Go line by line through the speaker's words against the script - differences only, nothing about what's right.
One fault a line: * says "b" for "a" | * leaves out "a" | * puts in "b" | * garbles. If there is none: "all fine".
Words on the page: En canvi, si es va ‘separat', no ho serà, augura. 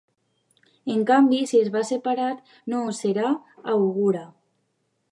all fine